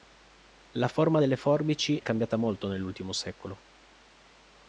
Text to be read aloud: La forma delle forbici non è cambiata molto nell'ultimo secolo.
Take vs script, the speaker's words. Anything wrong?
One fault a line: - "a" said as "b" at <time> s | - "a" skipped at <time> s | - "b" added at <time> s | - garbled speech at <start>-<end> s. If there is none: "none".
- "non" skipped at 2.0 s